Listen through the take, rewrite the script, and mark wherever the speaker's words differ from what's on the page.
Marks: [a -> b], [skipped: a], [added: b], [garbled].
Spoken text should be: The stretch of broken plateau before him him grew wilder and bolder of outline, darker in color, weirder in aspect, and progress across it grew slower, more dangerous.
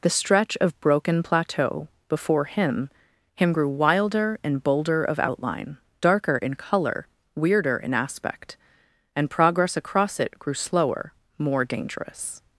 The stretch of broken plateau before him him grew wilder and bolder of outline, darker in color, weirder in aspect, and progress across it grew slower, more dangerous.